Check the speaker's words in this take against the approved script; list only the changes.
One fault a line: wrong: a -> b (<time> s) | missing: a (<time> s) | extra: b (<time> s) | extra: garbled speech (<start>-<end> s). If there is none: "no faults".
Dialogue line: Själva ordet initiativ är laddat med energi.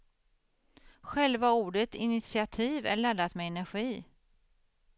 no faults